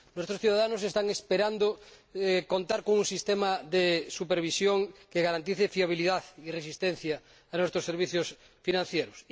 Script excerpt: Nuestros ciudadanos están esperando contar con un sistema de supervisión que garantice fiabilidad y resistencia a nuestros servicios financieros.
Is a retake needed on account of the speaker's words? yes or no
no